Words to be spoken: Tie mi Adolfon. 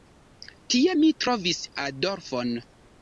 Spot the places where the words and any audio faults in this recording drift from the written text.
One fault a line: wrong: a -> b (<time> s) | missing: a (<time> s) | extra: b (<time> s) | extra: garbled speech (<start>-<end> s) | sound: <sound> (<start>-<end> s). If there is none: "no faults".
extra: trovis (1.2 s)